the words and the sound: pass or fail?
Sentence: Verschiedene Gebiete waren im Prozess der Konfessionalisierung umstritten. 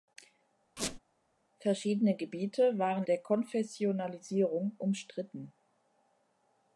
fail